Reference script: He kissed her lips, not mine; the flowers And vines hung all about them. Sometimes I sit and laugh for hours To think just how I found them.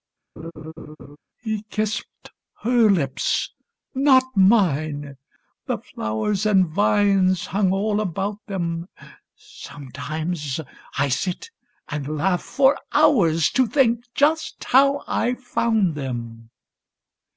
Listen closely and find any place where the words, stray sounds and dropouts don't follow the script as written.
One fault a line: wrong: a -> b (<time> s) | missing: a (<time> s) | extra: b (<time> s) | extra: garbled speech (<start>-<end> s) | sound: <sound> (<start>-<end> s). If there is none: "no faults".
sound: laugh (0.4-1.2 s)